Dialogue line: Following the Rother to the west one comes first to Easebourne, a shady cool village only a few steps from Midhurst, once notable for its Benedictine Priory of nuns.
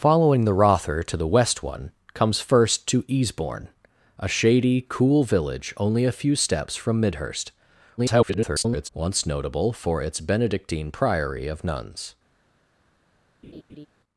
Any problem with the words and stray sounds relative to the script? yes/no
yes